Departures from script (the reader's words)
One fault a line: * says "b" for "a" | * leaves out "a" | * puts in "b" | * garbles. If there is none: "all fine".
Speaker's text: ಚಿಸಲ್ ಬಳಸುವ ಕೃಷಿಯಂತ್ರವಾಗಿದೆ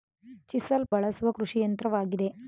all fine